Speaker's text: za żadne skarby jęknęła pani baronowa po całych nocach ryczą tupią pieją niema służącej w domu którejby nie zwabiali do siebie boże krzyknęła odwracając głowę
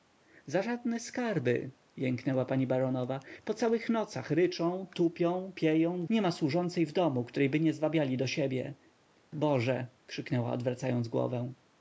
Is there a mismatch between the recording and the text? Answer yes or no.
no